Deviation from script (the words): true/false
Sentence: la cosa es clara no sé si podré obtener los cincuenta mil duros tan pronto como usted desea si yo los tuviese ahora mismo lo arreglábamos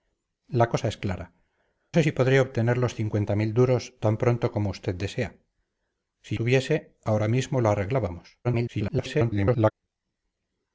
true